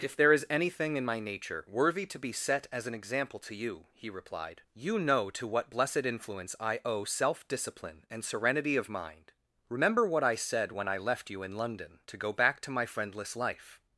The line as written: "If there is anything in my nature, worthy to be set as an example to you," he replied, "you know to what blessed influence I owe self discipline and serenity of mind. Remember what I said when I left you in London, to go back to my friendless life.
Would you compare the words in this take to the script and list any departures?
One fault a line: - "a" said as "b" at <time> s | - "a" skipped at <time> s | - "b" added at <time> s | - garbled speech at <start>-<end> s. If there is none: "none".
none